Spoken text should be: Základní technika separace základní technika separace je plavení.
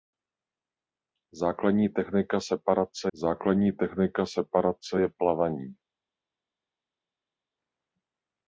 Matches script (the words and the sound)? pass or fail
pass